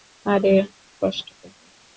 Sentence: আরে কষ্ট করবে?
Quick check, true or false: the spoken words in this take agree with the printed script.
true